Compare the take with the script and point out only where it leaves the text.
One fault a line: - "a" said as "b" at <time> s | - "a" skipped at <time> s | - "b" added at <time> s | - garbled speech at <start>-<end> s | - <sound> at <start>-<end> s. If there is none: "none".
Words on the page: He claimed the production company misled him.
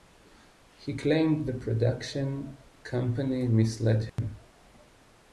- dropout at 4.1-4.2 s